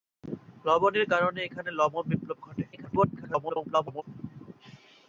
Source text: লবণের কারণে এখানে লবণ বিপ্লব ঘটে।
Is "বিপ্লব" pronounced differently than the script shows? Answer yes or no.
no